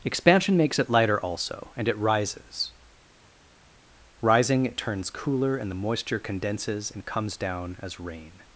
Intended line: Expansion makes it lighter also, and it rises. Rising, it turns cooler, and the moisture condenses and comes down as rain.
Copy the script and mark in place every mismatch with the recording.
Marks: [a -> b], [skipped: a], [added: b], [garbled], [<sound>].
Expansion makes it lighter also, and it rises. Rising, it turns cooler, and the moisture condenses and comes down as rain.